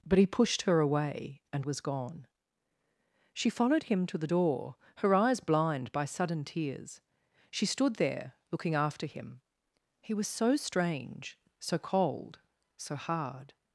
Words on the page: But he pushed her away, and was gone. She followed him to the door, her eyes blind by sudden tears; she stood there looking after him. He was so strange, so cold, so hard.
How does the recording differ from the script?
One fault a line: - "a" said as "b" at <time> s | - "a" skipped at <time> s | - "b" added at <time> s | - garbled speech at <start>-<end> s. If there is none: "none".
none